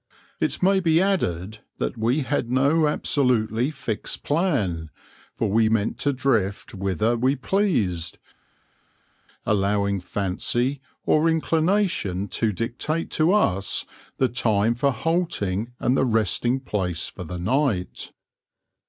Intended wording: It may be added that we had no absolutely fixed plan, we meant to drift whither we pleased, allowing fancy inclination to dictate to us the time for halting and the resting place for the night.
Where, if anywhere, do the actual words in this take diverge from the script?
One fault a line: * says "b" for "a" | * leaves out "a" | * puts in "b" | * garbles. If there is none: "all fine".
* puts in "for"
* puts in "or"